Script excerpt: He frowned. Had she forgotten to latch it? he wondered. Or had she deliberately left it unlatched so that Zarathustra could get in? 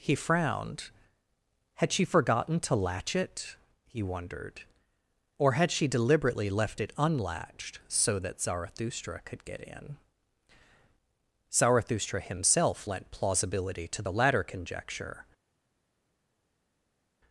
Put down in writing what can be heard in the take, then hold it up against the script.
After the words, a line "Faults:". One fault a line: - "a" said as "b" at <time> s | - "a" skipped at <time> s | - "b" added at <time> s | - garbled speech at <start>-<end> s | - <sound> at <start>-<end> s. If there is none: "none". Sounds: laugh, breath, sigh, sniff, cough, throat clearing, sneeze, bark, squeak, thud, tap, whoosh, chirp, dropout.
He frowned. Had she forgotten to latch it? he wondered. Or had she deliberately left it unlatched so that Zarathustra could get in? Zarathustra himself lent plausibility to the latter conjecture
Faults:
- "Zarathustra himself lent plausibility to the latter conjecture" added at 11.5 s